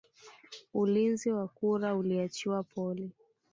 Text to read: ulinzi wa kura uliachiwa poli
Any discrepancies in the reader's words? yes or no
no